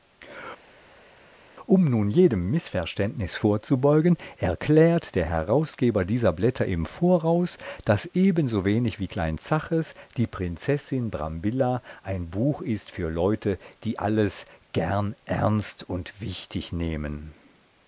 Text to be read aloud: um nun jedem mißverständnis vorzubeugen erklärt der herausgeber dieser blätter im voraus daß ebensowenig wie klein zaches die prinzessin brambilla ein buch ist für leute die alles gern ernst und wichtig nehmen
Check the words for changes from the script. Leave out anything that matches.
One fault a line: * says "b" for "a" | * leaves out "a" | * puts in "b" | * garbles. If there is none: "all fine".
all fine